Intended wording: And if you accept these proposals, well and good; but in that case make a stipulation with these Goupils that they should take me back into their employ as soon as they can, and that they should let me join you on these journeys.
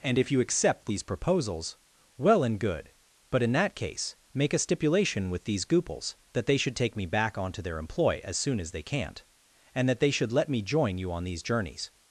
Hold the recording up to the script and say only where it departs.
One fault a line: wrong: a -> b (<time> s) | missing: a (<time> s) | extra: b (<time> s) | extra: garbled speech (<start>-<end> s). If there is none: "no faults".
wrong: into -> onto (7.4 s)
wrong: can -> can't (8.8 s)